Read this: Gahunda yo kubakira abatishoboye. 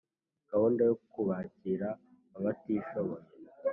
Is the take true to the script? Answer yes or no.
yes